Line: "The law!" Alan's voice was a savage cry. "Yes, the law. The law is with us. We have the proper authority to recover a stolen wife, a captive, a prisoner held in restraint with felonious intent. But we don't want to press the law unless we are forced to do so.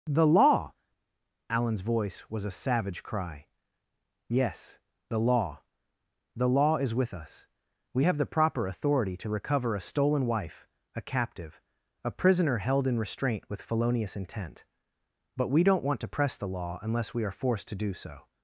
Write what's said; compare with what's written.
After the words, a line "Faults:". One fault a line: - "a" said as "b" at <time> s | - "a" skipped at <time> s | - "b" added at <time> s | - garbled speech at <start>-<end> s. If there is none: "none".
"The law!" Alan's voice was a savage cry. "Yes, the law. The law is with us. We have the proper authority to recover a stolen wife, a captive, a prisoner held in restraint with felonious intent. But we don't want to press the law unless we are forced to do so.
Faults:
none